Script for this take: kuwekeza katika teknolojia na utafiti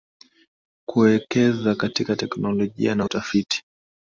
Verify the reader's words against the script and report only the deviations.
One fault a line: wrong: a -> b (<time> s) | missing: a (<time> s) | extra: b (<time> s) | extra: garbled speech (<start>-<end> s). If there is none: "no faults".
no faults